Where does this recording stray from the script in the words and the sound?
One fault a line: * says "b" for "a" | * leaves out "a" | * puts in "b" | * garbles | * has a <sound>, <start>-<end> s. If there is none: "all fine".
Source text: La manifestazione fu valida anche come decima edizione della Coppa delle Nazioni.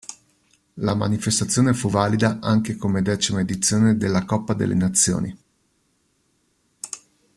all fine